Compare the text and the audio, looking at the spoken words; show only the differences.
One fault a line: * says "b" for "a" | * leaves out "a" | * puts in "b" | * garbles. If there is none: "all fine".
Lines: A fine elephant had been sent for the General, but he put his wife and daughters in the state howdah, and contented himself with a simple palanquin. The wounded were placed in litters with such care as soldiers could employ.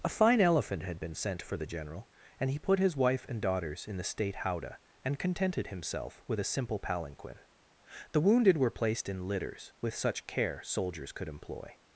* says "and" for "but"
* leaves out "as"